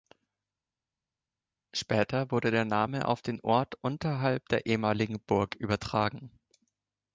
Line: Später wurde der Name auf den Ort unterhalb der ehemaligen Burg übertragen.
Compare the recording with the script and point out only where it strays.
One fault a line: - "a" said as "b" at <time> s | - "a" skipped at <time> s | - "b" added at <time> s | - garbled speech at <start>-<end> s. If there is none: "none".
none